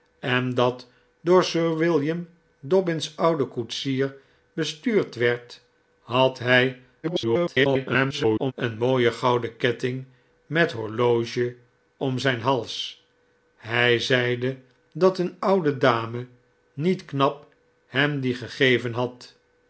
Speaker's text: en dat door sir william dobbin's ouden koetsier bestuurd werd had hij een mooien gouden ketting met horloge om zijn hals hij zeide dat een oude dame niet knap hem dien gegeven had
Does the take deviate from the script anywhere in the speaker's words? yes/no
yes